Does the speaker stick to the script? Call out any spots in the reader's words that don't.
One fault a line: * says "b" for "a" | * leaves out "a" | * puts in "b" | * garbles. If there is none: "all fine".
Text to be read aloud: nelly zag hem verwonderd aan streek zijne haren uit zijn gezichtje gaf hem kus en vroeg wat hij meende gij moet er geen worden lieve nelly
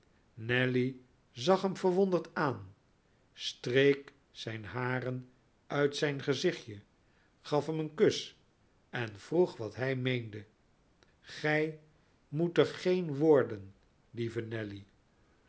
* puts in "een"